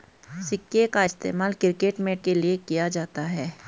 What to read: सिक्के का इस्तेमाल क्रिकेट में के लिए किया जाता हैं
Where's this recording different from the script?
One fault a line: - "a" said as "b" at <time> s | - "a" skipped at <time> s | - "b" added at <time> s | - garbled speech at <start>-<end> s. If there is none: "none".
none